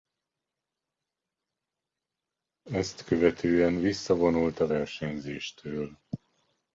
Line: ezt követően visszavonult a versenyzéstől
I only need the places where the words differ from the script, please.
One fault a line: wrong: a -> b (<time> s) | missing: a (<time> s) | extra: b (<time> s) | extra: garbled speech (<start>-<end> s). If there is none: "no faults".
no faults